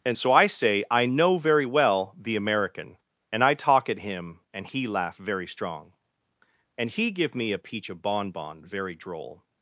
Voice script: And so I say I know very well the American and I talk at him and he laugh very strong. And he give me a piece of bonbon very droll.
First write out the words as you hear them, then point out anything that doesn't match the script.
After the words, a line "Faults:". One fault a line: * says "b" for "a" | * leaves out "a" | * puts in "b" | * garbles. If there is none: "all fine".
And so I say I know very well the American and I talk at him and he laugh very strong. And he give me a peach of bonbon very droll.
Faults:
* says "peach" for "piece"